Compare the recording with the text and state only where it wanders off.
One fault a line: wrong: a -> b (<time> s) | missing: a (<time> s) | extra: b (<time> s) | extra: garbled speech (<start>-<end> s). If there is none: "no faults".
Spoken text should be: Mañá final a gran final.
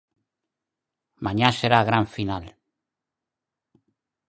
wrong: final -> será (1.6 s)